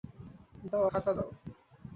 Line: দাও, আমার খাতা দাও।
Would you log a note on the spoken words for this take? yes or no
yes